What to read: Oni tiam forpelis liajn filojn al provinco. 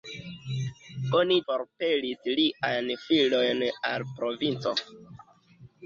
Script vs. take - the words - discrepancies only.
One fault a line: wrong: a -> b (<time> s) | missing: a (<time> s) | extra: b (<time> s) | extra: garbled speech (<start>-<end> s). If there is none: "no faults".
missing: tiam (1.4 s)